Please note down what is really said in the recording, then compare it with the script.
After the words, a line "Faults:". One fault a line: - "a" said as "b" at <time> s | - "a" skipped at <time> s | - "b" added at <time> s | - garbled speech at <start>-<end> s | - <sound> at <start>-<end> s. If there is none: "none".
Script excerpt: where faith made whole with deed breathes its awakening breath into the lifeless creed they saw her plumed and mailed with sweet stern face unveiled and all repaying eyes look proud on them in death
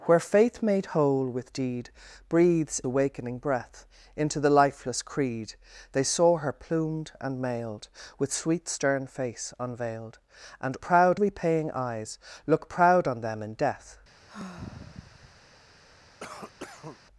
where faith made whole with deed breathes awakening breath into the lifeless creed they saw her plumed and mailed with sweet stern face unveiled and proud repaying eyes look proud on them in death
Faults:
- "its" skipped at 2.8 s
- "all" said as "proud" at 10.8 s
- sigh at 14.3-15.4 s
- cough at 16.2-17.0 s